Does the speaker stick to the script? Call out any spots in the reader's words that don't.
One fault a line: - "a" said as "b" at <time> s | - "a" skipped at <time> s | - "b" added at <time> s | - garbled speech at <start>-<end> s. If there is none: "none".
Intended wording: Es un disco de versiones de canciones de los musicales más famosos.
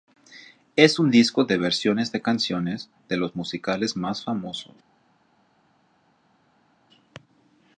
none